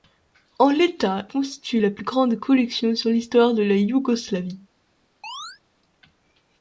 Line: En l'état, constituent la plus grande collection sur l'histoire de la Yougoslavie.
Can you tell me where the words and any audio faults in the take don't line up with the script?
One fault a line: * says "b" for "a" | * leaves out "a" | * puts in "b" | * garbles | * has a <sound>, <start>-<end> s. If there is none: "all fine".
* has a chirp, 5.2-5.6 s